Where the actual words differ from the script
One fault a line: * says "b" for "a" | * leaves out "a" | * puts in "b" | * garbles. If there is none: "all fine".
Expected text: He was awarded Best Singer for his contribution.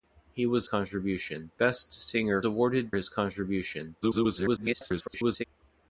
* says "contribution" for "awarded"
* says "awarded" for "for"
* garbles